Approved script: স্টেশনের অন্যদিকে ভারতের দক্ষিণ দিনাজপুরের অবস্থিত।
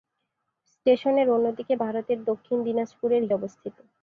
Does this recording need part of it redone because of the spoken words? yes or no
no